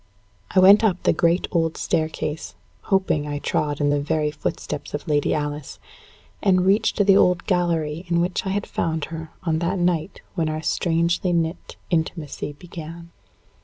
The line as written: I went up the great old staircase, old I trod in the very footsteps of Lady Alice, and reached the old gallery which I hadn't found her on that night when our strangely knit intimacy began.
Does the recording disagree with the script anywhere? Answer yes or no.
yes